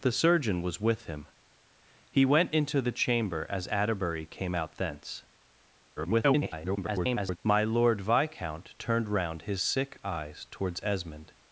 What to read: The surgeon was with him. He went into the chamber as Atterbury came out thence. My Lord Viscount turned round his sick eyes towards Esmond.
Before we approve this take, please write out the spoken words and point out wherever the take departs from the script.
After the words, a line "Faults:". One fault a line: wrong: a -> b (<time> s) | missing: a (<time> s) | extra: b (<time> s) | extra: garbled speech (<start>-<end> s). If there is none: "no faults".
The surgeon was with him. He went into the chamber as Atterbury came out thence. [garbled] My Lord Viscount turned round his sick eyes towards Esmond.
Faults:
extra: garbled speech (6.0-7.4 s)